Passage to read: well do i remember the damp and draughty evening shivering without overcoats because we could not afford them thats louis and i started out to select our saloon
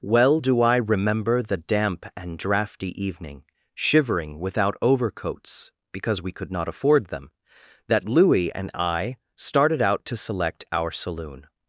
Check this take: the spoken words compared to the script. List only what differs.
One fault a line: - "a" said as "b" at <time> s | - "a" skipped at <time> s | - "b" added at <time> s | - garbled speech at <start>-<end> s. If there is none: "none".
- "thats" said as "that" at 7.9 s